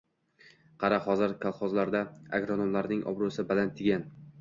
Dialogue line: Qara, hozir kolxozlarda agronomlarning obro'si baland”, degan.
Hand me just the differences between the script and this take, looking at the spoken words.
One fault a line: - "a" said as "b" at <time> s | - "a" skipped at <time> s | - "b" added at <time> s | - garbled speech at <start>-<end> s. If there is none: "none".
none